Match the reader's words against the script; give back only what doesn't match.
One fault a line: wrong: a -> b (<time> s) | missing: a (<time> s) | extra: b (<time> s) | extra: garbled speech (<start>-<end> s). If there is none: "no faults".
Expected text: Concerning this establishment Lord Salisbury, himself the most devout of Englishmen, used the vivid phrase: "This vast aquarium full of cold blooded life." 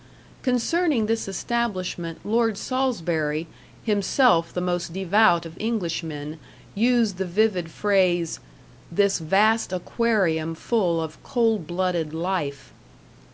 no faults